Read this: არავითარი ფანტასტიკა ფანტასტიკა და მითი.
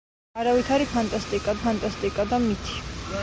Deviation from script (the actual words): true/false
false